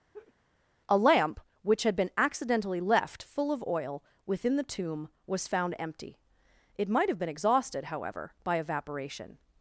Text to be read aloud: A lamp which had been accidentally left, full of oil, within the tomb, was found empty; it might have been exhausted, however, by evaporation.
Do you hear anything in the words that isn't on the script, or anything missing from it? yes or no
no